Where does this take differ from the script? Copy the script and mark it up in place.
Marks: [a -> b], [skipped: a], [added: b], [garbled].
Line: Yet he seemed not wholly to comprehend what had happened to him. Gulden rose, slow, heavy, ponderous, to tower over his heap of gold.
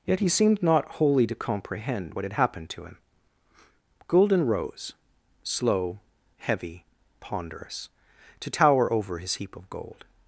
Yet he seemed not wholly to comprehend what had happened to him. Gulden rose, slow, heavy, ponderous, to tower over his heap of gold.